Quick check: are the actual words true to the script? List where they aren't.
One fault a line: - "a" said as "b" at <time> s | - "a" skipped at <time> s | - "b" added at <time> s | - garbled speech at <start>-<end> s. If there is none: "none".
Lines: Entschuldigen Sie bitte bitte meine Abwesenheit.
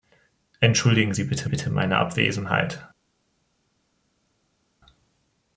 none